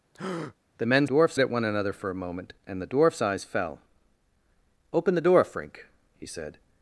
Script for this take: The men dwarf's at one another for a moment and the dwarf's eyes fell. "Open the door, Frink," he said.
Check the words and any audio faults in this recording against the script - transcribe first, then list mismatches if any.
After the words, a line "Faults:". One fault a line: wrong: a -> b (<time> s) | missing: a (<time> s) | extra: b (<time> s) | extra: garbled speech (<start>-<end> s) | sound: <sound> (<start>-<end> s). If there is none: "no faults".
The men dwarf's at one another for a moment and the dwarf's eyes fell. "Open the door, Frink," he said.
Faults:
sound: breath (0.1-0.6 s)